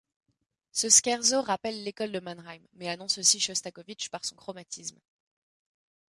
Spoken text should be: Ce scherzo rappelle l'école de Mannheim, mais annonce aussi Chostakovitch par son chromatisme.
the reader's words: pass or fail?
pass